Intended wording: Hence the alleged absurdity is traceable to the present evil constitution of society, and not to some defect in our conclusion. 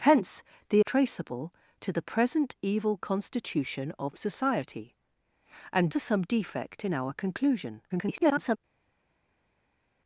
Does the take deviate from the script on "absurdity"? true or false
true